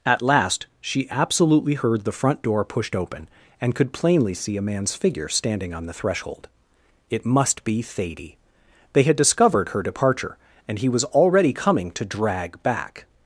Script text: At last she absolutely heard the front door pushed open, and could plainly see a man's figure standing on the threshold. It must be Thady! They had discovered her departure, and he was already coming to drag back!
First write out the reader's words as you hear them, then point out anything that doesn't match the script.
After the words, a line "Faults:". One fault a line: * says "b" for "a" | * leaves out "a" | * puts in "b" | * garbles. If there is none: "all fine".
At last she absolutely heard the front door pushed open, and could plainly see a man's figure standing on the threshold. It must be Thady! They had discovered her departure, and he was already coming to drag back!
Faults:
all fine